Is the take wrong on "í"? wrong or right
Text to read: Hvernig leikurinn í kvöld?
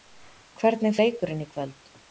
right